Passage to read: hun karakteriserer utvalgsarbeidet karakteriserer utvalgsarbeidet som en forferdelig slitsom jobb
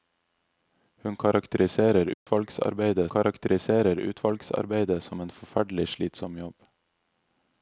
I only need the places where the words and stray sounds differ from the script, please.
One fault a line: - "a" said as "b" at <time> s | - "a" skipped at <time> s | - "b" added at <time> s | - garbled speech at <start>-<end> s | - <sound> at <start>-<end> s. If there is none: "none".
- dropout at 2.1-2.3 s